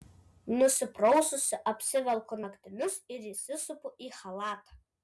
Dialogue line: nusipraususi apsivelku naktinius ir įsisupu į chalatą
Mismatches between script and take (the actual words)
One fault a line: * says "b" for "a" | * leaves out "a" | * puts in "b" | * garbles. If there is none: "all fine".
all fine